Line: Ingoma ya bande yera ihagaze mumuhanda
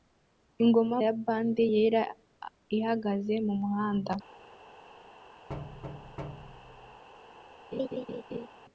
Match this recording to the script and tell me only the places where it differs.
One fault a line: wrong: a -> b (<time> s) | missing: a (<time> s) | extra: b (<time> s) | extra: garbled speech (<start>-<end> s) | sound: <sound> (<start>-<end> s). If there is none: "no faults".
sound: thud (5.5-7.0 s)
sound: laugh (7.7-8.5 s)